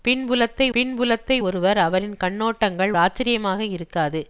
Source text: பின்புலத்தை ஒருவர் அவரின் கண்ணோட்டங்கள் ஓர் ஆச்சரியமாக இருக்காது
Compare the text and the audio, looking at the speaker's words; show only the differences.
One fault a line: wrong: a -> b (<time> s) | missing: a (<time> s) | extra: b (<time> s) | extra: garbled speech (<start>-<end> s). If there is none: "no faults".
extra: பின்புலத்தை (0.7 s)
missing: ஓர் (2.9 s)